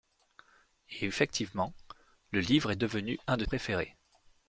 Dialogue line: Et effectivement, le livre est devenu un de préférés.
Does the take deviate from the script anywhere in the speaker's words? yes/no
no